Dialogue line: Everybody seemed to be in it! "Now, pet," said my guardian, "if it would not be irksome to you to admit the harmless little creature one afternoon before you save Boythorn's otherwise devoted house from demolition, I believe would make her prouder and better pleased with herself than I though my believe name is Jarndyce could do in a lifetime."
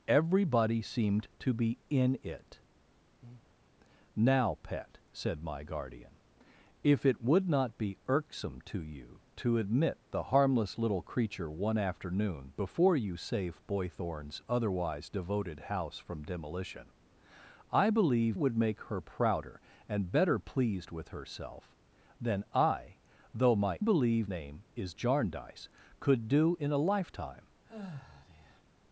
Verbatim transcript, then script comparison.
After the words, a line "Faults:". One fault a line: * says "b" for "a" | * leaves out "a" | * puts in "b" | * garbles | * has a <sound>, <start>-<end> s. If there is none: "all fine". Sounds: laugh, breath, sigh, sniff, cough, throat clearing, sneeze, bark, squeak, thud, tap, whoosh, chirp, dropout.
Everybody seemed to be in it! "Now, pet," said my guardian, "if it would not be irksome to you to admit the harmless little creature one afternoon before you save Boythorn's otherwise devoted house from demolition, I believe would make her prouder and better pleased with herself than I though my believe name is Jarndyce could do in a lifetime."
Faults:
* has a breath, 3.2-3.5 s
* has a sigh, 27.6-28.6 s